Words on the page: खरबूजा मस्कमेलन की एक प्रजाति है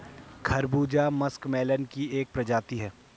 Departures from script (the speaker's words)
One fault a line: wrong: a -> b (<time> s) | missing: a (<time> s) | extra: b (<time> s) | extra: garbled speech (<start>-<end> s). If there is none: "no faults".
no faults